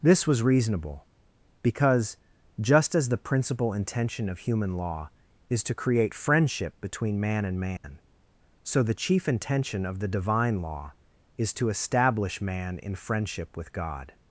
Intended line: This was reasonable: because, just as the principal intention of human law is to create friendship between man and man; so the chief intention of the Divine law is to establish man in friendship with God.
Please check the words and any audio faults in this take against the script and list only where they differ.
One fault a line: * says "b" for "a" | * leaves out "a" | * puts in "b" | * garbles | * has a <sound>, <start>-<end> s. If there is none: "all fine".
* has a dropout, 7.8-7.8 s